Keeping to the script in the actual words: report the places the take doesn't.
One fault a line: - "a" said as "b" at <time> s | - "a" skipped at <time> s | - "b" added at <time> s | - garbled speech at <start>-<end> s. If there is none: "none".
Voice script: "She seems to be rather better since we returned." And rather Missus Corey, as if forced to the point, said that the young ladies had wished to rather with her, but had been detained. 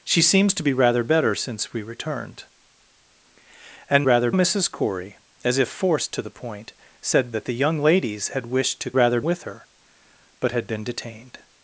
none